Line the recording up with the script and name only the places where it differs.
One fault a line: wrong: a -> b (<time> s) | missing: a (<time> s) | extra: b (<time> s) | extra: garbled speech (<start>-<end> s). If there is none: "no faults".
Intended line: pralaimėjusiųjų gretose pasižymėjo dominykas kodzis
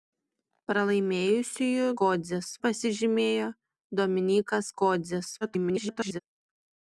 wrong: gretose -> kodzis (2.0 s)
extra: garbled speech (5.4-6.2 s)